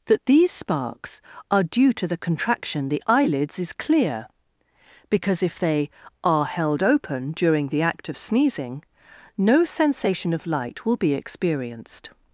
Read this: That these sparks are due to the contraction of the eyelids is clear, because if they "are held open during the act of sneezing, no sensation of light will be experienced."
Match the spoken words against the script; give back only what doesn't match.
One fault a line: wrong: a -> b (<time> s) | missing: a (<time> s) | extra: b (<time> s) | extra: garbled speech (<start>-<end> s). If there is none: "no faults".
missing: of (2.9 s)